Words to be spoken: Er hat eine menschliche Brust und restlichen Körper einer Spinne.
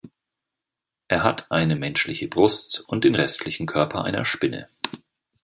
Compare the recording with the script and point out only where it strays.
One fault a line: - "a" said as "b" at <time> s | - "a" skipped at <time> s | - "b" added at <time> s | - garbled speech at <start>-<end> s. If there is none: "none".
- "den" added at 3.0 s